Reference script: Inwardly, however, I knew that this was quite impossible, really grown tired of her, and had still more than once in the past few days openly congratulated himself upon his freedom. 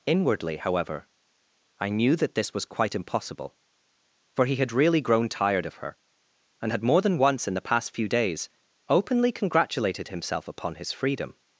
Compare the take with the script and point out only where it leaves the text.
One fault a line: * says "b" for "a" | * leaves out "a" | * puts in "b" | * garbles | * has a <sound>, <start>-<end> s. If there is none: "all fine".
* puts in "for he had"
* leaves out "still"